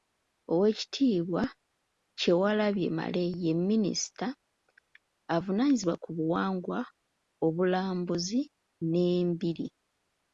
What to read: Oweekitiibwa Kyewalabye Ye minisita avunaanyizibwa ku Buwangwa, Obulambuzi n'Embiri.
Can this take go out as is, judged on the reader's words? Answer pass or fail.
fail